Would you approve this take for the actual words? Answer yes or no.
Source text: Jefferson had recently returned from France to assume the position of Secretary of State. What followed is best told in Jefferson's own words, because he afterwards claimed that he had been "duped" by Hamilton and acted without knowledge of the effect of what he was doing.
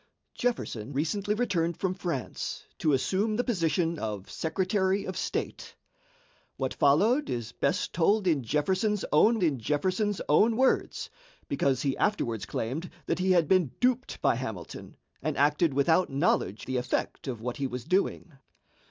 no